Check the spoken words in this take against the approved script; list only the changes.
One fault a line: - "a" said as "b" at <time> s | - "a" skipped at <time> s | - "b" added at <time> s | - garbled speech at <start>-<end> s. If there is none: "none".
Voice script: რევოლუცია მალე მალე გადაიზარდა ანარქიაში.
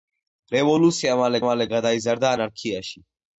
none